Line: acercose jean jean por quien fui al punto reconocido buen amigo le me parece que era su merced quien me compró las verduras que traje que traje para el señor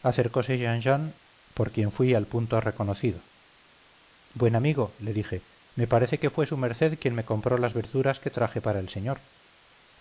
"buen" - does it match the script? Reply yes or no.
yes